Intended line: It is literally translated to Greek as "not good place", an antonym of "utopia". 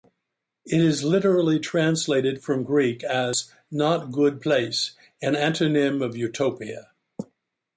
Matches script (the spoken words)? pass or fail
fail